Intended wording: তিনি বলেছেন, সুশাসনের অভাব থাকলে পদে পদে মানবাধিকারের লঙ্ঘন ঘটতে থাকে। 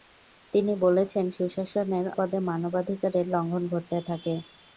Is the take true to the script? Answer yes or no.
no